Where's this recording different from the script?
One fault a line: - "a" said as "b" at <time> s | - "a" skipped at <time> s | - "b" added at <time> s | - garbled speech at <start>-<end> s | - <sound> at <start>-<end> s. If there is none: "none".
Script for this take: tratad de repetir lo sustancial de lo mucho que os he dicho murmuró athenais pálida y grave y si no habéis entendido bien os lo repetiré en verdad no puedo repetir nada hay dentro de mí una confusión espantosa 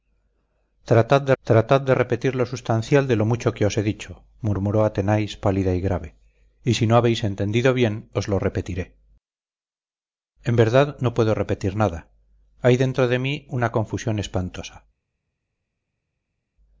- "tratad de" added at 1.4 s